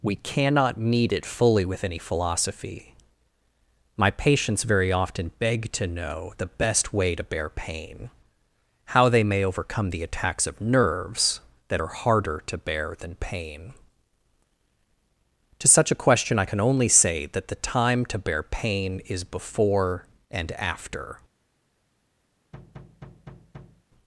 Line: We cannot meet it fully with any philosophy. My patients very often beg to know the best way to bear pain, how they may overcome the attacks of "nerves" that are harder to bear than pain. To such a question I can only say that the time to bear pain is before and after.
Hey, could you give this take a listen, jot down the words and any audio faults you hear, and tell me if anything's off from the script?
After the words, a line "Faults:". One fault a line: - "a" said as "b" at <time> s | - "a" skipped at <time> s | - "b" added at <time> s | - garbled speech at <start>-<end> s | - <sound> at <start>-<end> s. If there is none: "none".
We cannot meet it fully with any philosophy. My patients very often beg to know the best way to bear pain, how they may overcome the attacks of "nerves" that are harder to bear than pain. To such a question I can only say that the time to bear pain is before and after.
Faults:
- thud at 22.5-23.8 s